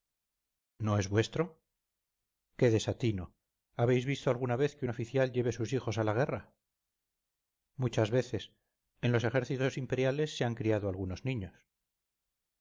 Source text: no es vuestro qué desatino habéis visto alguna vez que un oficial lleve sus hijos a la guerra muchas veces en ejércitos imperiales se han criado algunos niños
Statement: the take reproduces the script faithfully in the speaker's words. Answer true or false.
false